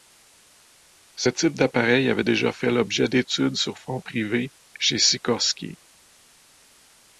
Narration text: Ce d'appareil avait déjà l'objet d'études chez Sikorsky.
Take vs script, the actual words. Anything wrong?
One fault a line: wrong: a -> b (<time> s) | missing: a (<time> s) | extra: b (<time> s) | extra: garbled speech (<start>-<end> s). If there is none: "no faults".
extra: type (1.3 s)
extra: fait (2.5 s)
extra: sur fonds privés (3.5 s)